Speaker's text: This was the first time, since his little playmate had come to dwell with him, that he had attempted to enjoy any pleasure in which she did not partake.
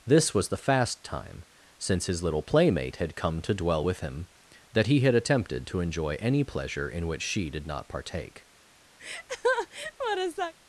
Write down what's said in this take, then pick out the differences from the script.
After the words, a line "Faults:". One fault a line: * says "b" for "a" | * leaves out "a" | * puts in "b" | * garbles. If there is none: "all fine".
This was the fast time, since his little playmate had come to dwell with him, that he had attempted to enjoy any pleasure in which she did not partake.
Faults:
* says "fast" for "first"